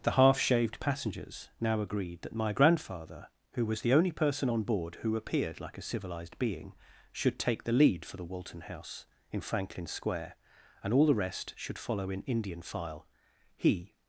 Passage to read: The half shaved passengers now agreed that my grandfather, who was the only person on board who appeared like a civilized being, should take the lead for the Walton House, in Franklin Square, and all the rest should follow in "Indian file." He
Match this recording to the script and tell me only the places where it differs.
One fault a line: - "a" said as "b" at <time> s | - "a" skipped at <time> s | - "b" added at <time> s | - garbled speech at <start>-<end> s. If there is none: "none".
none